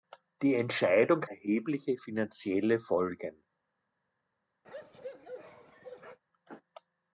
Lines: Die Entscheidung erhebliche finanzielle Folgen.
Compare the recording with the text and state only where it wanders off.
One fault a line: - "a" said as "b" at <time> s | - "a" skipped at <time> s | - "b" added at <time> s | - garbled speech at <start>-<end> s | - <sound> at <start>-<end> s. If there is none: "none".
- bark at 4.6-6.2 s